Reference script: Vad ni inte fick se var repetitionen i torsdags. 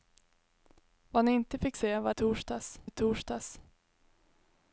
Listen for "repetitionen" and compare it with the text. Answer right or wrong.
wrong